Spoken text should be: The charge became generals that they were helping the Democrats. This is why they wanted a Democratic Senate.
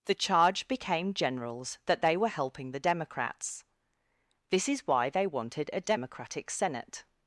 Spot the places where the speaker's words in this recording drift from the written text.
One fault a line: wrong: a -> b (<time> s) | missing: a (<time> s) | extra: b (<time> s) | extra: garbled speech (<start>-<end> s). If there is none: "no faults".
no faults